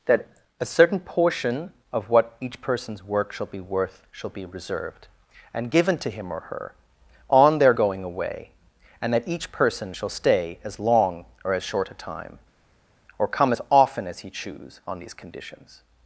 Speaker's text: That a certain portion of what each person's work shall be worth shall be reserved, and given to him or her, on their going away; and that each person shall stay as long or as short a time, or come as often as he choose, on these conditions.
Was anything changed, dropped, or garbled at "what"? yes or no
no